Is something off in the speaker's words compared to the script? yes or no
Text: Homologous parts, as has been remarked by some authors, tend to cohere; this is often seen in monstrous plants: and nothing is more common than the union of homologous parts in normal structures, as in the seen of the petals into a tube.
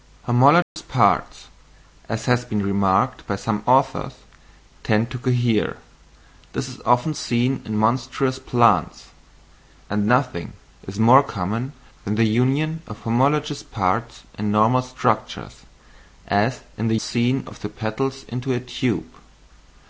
no